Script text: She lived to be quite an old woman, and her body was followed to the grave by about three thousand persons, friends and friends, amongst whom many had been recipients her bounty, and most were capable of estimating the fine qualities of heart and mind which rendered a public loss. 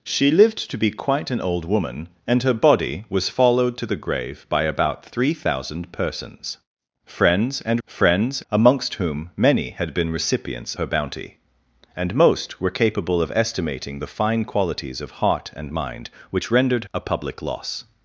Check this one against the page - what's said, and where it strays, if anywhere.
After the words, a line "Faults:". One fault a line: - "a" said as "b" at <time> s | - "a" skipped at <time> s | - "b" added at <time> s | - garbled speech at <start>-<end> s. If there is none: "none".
She lived to be quite an old woman, and her body was followed to the grave by about three thousand persons, friends and friends, amongst whom many had been recipients her bounty, and most were capable of estimating the fine qualities of heart and mind which rendered a public loss.
Faults:
none